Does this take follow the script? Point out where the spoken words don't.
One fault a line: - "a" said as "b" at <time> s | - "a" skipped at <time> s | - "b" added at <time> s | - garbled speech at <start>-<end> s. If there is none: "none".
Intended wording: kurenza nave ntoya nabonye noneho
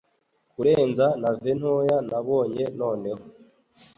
none